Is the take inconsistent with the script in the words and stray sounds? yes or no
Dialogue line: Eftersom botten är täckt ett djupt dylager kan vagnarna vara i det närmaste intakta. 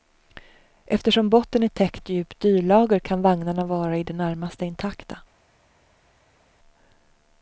no